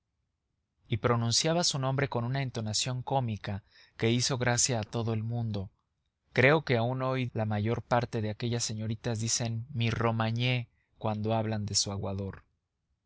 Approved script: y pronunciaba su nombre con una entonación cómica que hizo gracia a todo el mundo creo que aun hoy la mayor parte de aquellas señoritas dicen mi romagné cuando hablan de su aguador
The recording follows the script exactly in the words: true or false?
true